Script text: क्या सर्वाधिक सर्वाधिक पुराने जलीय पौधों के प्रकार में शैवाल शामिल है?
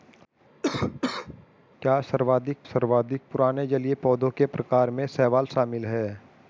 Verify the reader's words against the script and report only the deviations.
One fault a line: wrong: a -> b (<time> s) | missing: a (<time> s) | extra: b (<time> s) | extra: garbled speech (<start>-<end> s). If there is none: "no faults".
no faults